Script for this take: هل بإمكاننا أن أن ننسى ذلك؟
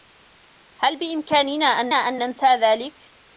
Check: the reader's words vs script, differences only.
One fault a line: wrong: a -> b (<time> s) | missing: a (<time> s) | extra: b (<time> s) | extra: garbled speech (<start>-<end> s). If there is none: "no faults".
no faults